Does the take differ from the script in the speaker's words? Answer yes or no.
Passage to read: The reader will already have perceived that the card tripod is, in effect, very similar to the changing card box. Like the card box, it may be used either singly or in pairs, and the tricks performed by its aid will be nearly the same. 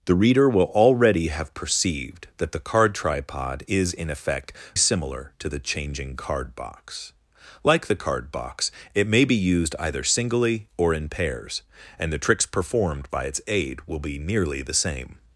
yes